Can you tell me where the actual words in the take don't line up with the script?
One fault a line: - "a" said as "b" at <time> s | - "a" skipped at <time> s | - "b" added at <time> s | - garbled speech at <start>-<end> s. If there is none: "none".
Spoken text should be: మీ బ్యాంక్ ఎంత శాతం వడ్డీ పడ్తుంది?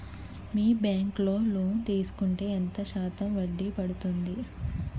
- "లో లోన్ తీసుకుంటే" added at 1.2 s